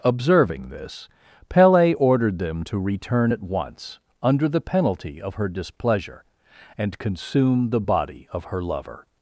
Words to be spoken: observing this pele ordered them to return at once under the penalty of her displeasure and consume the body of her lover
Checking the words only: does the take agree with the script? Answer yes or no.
yes